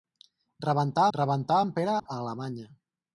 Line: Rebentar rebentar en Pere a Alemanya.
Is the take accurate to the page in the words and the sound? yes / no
no